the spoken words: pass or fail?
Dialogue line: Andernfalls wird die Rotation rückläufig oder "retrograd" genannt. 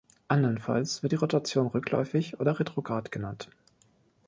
pass